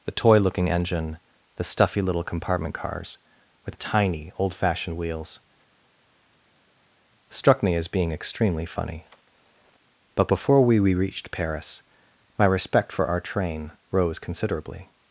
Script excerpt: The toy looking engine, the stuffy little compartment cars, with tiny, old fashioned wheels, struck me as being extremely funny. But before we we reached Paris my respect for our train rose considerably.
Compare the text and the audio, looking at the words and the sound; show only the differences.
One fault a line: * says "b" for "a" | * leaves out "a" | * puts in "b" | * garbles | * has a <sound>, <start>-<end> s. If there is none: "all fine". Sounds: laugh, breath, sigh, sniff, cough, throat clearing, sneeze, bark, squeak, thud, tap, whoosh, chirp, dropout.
all fine